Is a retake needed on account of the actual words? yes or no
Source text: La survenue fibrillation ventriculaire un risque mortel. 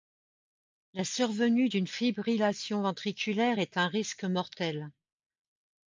yes